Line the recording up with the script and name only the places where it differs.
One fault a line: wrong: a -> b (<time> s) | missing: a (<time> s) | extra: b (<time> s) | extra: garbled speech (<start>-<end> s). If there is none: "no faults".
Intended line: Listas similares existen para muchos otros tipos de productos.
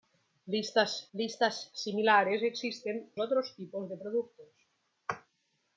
extra: listas (1.1 s)
missing: para muchos (3.1 s)